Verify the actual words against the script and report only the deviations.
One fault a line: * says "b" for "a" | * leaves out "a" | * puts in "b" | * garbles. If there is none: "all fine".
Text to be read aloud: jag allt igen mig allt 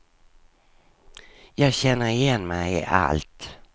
* says "känner" for "allt"
* puts in "i"